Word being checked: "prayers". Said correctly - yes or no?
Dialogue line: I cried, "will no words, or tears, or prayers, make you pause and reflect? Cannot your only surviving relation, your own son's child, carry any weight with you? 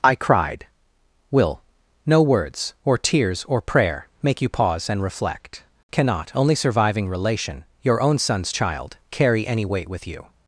no